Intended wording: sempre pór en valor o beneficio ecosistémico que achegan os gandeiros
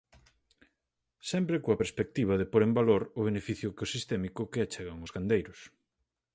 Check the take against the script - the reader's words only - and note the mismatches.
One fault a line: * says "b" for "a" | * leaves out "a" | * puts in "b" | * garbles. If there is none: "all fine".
* puts in "coa perspectiva de"